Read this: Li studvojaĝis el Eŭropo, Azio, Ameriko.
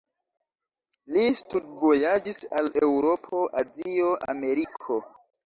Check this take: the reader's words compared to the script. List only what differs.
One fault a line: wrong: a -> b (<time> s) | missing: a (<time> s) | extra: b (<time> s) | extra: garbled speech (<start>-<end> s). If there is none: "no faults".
wrong: el -> al (2.6 s)